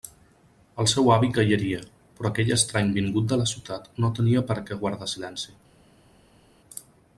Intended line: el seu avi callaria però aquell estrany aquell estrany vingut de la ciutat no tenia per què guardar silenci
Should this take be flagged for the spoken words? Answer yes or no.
yes